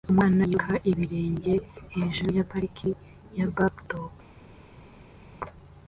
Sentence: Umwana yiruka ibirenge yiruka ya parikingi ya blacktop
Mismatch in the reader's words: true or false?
true